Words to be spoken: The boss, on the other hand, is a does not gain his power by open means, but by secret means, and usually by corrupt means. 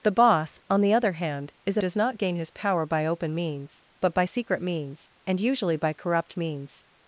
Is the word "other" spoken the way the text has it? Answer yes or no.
yes